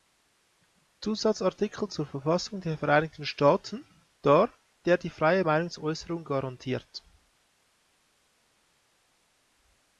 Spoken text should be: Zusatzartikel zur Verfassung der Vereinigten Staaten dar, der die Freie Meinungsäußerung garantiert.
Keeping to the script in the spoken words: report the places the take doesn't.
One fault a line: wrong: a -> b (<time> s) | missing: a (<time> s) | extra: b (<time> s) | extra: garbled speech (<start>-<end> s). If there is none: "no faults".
no faults